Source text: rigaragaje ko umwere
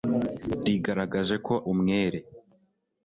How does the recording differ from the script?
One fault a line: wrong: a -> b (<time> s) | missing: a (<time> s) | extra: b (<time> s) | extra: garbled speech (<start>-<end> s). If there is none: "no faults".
no faults